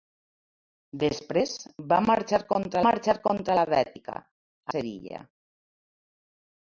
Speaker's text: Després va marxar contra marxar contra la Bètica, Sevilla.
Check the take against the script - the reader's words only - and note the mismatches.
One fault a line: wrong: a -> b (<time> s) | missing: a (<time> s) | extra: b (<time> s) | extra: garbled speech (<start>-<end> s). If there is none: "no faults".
no faults